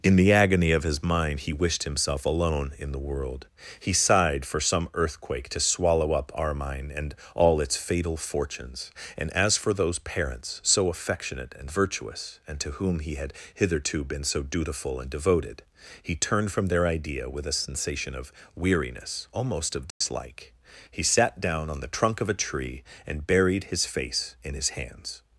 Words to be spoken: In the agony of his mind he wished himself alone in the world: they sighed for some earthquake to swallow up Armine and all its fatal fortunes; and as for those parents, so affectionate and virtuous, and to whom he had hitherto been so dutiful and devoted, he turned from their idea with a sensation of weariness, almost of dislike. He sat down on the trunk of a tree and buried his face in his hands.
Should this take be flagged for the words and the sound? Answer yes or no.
yes